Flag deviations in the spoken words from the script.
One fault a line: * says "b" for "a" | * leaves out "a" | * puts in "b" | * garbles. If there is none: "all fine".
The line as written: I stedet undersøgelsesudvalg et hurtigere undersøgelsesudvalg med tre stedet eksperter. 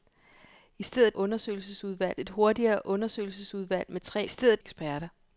all fine